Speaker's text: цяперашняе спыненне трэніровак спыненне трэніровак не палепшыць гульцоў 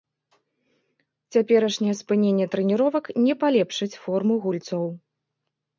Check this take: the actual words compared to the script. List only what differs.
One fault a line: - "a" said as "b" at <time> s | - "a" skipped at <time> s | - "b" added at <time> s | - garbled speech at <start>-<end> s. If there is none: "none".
- "спыненне трэніровак" skipped at 3.0 s
- "форму" added at 4.1 s